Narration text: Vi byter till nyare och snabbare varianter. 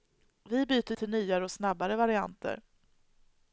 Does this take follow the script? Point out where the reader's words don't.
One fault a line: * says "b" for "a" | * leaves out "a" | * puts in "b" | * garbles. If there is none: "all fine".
all fine